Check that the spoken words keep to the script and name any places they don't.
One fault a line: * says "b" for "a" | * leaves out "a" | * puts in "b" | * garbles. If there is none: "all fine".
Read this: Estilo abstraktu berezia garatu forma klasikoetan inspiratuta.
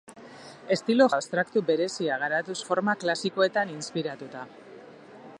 all fine